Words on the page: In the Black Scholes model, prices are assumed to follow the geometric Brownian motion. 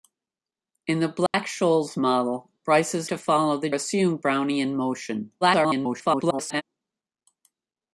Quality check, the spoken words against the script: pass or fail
fail